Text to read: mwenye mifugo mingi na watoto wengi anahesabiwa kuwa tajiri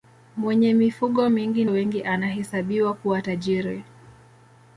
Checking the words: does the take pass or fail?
fail